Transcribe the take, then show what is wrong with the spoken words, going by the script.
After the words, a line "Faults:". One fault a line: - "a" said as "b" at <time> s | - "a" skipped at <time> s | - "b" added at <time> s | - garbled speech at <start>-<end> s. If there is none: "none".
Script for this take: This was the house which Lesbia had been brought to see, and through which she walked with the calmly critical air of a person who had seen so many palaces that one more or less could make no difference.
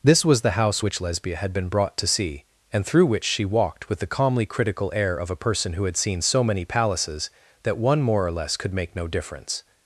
This was the house which Lesbia had been brought to see, and through which she walked with the calmly critical air of a person who had seen so many palaces that one more or less could make no difference.
Faults:
none